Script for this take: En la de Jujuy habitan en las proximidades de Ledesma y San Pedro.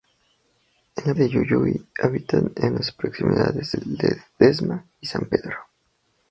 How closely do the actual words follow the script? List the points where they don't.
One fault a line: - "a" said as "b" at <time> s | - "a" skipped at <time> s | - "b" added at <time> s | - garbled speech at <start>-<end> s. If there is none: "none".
none